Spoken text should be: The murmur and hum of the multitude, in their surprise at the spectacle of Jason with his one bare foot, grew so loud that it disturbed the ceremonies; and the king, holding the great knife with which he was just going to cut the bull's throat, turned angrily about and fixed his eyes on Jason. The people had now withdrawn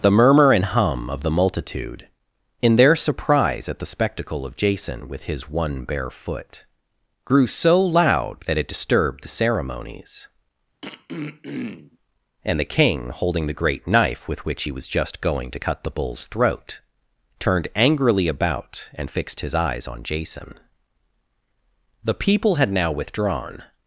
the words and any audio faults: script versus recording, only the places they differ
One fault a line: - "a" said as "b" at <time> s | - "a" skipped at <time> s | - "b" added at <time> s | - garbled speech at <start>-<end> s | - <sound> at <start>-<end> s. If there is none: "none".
- throat clearing at 10.8-12.0 s